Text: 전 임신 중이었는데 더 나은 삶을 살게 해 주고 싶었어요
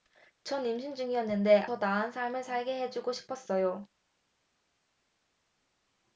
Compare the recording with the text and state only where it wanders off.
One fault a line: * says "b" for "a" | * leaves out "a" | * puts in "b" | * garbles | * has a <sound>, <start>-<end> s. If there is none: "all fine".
all fine